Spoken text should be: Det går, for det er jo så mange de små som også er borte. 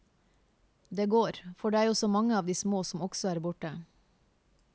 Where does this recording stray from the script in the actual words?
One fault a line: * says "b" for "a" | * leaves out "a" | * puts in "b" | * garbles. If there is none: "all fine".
* puts in "av"